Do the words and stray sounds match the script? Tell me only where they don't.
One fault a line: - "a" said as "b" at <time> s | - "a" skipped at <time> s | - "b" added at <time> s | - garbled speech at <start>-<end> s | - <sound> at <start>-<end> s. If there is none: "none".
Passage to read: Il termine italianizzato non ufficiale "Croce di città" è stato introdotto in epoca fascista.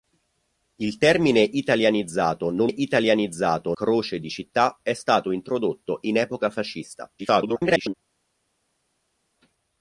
- "ufficiale" said as "italianizzato" at 2.7 s
- garbled speech at 7.2-7.9 s